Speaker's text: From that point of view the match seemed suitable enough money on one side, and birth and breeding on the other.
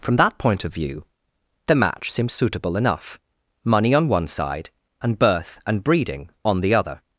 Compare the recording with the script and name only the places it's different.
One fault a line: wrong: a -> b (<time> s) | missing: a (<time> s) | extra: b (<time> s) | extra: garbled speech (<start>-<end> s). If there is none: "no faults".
wrong: seemed -> seems (2.1 s)